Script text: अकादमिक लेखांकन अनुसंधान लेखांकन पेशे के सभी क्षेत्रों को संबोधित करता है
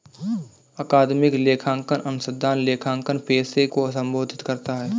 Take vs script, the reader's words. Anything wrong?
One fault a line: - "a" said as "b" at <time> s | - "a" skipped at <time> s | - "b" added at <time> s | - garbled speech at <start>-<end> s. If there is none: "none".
- "के सभी क्षेत्रों" skipped at 3.7 s